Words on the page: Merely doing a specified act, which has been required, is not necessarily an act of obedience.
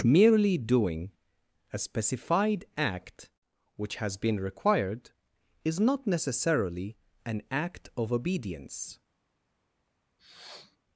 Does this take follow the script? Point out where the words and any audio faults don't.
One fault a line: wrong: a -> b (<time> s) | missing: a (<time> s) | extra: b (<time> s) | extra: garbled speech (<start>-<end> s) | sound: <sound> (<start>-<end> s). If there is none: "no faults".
sound: sniff (10.2-10.8 s)